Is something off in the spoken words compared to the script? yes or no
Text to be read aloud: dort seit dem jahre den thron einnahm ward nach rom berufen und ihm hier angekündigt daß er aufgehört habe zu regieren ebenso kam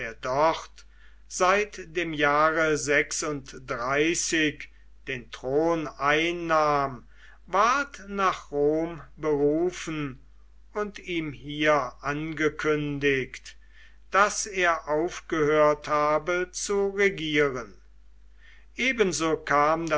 no